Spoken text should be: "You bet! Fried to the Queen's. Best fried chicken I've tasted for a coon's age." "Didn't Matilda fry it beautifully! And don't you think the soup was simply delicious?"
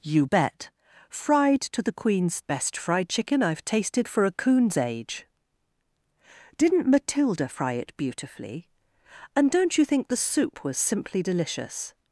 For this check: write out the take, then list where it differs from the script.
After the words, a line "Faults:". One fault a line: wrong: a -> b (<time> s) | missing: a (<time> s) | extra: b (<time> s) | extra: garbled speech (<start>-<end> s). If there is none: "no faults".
"You bet! Fried to the Queen's. Best fried chicken I've tasted for a coon's age." "Didn't Matilda fry it beautifully! And don't you think the soup was simply delicious?"
Faults:
no faults